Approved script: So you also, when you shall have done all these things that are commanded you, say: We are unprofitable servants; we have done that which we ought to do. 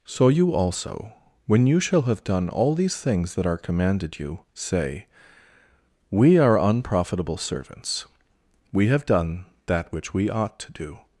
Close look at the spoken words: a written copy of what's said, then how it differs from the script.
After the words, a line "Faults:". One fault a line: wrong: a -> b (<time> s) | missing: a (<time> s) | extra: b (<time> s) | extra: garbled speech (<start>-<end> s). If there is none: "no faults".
So you also, when you shall have done all these things that are commanded you, say: We are unprofitable servants; we have done that which we ought to do.
Faults:
no faults